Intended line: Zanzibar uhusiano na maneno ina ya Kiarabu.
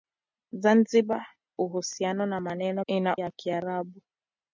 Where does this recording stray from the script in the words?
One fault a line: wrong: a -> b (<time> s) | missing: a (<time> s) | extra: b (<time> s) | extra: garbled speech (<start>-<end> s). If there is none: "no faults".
no faults